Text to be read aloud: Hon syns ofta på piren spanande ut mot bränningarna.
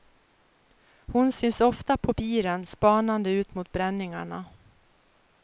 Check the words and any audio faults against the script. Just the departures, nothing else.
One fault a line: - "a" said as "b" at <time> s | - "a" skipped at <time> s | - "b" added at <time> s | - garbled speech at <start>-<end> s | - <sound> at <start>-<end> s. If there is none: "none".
none